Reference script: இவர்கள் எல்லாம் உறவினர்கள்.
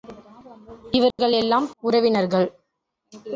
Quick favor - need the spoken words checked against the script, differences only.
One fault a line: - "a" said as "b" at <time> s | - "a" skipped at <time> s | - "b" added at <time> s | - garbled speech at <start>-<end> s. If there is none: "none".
none